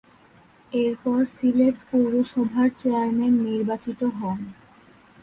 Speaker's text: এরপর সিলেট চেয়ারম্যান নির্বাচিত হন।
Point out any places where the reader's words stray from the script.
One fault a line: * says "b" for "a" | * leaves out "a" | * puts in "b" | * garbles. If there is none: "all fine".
* puts in "পৌরসভার"